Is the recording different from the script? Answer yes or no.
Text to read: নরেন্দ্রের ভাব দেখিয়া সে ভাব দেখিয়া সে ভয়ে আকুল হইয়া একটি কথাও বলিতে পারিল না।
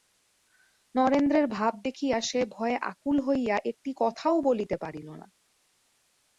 yes